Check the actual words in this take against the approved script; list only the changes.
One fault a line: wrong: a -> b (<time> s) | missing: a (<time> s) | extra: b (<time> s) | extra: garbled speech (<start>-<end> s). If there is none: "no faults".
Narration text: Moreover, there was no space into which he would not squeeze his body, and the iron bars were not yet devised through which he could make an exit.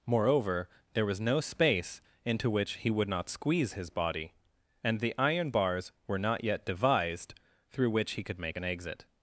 no faults